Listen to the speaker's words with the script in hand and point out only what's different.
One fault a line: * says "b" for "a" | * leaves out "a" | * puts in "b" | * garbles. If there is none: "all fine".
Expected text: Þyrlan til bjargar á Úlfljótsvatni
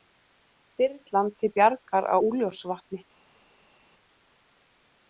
all fine